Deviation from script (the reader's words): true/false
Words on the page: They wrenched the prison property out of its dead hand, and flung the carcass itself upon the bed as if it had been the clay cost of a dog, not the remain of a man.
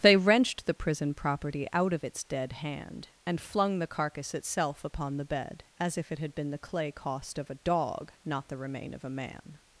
false